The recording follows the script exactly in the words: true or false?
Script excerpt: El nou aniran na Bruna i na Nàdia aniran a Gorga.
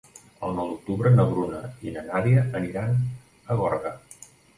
false